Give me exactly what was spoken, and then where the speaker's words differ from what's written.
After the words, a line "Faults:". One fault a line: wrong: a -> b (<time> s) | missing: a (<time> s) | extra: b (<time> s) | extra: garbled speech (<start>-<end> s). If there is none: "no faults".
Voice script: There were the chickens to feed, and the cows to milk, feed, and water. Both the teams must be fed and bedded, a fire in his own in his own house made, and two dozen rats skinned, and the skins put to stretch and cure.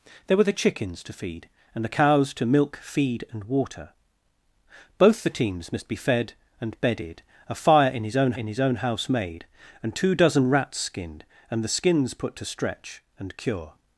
There were the chickens to feed, and the cows to milk, feed, and water. Both the teams must be fed and bedded, a fire in his own in his own house made, and two dozen rats skinned, and the skins put to stretch and cure.
Faults:
no faults